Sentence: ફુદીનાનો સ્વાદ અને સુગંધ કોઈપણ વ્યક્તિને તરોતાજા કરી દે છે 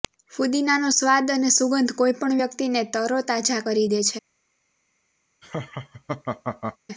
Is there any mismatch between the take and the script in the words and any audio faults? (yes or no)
yes